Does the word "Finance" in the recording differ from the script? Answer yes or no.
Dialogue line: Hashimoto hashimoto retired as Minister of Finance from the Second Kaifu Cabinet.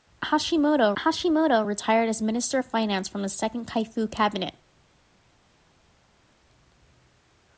no